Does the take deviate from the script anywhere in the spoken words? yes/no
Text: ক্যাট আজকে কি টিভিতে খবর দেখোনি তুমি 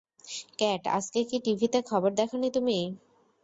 no